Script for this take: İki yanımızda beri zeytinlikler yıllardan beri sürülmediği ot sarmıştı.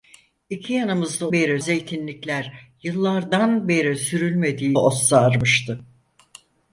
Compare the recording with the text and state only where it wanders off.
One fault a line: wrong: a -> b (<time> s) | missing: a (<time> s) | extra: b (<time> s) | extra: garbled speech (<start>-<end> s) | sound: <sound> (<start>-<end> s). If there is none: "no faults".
no faults